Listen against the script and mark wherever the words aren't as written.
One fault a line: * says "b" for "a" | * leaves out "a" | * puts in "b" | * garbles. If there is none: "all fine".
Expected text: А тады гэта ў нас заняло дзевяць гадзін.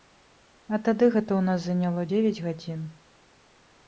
all fine